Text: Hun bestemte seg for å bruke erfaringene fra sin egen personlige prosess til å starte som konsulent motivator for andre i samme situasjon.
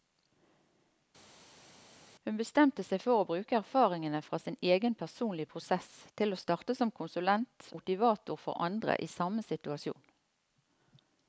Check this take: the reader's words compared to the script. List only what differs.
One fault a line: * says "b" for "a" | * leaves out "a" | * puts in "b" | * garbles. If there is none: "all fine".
all fine